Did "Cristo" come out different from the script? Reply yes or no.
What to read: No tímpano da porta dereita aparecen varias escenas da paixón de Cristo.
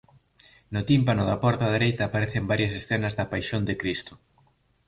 no